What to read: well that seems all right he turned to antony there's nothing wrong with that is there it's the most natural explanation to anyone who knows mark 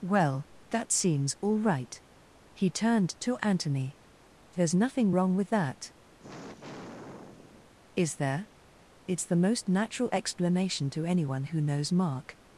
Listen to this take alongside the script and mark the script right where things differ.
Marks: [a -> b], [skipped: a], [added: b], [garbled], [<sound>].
well that seems all right he turned to antony there's nothing wrong with that [sigh] is there it's the most natural explanation to anyone who knows mark